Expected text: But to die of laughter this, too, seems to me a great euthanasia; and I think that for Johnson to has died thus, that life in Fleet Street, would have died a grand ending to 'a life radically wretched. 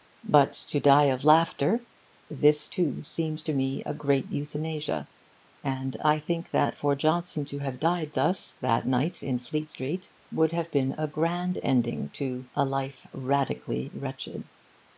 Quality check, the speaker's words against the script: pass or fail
fail